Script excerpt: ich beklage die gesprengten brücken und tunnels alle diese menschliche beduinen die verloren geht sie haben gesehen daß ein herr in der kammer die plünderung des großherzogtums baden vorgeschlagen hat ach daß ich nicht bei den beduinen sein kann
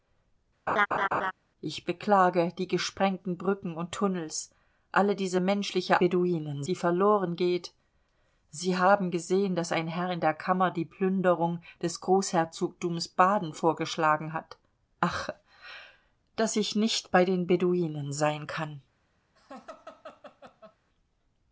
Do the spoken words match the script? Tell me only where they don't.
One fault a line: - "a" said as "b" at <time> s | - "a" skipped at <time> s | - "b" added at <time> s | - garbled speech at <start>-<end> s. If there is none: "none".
none